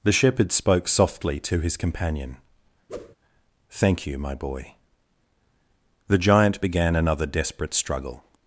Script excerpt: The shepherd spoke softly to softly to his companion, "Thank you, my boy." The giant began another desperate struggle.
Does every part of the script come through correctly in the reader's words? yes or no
no